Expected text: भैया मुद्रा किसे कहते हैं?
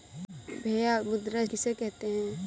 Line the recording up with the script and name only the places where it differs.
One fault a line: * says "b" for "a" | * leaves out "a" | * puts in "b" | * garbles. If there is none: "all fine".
all fine